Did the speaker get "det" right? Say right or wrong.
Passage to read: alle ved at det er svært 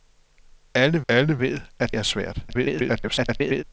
wrong